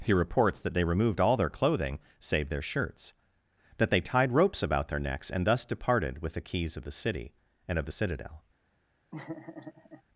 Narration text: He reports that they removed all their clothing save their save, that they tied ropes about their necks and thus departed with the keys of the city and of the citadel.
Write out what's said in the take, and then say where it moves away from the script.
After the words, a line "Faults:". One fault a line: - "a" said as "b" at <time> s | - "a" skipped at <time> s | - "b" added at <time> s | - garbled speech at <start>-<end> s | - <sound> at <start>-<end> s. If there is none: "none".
He reports that they removed all their clothing save their shirts, that they tied ropes about their necks and thus departed with the keys of the city and of the citadel.
Faults:
- "save" said as "shirts" at 2.6 s
- laugh at 9.1-10.0 s